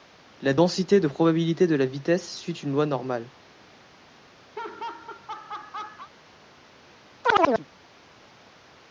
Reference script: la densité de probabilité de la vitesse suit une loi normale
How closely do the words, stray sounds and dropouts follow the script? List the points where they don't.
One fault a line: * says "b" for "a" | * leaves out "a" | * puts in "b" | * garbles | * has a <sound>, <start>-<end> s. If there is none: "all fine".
* has a laugh, 4.5-6.1 s
* has a chirp, 7.2-7.7 s